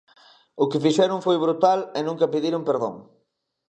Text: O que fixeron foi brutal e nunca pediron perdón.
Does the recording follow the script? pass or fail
pass